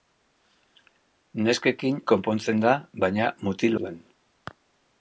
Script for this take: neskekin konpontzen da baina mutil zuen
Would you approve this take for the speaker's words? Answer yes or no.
yes